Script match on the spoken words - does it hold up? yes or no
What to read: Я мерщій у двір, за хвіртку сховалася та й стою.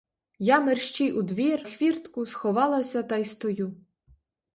no